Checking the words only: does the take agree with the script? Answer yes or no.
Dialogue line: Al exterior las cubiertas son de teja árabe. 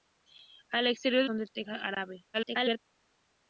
no